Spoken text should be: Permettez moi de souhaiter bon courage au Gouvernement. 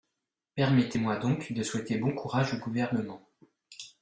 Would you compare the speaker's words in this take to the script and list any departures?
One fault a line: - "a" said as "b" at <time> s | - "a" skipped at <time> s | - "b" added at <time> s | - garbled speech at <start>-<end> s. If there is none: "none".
- "donc" added at 1.2 s